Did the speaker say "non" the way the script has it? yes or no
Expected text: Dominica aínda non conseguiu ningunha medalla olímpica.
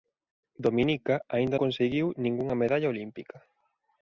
no